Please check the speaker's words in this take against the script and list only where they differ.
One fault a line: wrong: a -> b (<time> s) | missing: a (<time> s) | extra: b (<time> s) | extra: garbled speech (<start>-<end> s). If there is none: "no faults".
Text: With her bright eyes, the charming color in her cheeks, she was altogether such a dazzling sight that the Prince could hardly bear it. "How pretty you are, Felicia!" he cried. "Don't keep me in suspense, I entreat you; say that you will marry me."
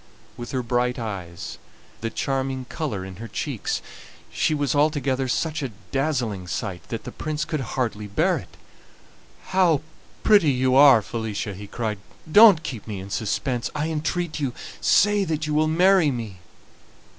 no faults